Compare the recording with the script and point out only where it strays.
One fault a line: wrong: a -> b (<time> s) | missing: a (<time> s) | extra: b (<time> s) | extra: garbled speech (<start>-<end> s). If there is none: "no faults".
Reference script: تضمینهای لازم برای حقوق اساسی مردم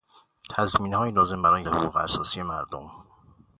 no faults